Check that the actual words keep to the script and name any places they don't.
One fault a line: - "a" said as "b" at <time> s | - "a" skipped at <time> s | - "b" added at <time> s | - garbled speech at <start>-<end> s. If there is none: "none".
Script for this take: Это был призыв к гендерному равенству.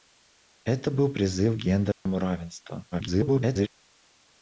- garbled speech at 2.9-3.7 s